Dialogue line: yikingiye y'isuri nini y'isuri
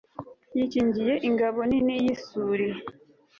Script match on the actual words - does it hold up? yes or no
no